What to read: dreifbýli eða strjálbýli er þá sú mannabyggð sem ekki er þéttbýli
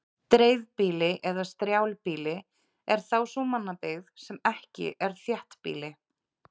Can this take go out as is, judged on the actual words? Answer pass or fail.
pass